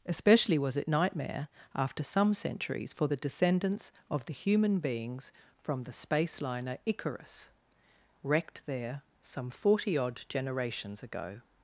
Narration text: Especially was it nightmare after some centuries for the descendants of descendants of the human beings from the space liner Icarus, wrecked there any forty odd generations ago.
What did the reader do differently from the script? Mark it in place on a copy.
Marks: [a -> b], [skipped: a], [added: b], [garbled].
Especially was it nightmare after some centuries for the descendants of [skipped: descendants of] the human beings from the space liner Icarus, wrecked there [any -> some] forty odd generations ago.